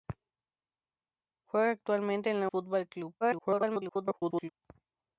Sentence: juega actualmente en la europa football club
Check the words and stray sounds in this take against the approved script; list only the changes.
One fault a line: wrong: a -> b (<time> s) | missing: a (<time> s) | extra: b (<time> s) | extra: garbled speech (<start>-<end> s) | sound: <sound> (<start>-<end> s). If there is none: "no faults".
missing: europa (2.5 s)
extra: garbled speech (3.2-4.5 s)